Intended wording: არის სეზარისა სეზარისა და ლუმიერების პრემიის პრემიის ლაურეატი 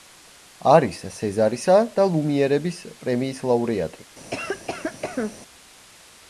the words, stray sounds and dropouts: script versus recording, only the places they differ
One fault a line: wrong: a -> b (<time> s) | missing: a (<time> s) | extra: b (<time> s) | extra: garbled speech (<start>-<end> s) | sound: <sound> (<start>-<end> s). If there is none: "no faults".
missing: სეზარისა (1.8 s)
missing: პრემიის (3.5 s)
sound: cough (4.3-5.4 s)